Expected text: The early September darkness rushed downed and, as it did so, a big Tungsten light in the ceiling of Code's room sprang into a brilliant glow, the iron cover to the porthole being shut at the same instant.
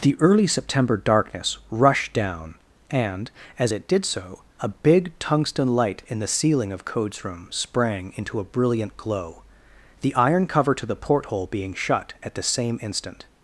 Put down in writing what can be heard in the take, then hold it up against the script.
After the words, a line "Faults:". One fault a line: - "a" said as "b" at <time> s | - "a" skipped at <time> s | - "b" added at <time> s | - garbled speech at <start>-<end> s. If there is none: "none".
The early September darkness rushed down and, as it did so, a big Tungsten light in the ceiling of Code's room sprang into a brilliant glow, the iron cover to the porthole being shut at the same instant.
Faults:
- "downed" said as "down" at 2.1 s